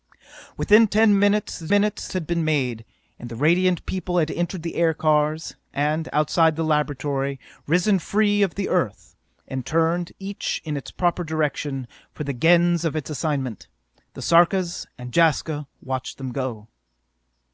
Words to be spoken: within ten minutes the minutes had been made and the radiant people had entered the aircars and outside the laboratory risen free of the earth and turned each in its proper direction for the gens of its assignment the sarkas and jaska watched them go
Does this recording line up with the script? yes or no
yes